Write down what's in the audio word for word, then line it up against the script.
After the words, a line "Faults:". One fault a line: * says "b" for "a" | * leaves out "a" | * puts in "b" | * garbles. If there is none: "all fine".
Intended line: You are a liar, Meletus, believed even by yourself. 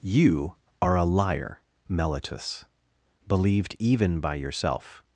You are a liar, Meletus, believed even by yourself.
Faults:
all fine